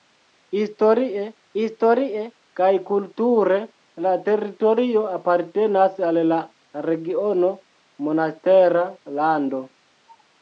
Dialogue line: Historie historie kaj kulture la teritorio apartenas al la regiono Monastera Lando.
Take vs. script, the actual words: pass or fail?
pass